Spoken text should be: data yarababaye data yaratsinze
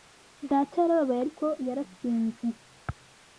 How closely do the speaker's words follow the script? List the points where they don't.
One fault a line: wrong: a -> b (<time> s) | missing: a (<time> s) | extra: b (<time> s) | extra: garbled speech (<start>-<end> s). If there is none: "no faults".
wrong: data -> ariko (1.2 s)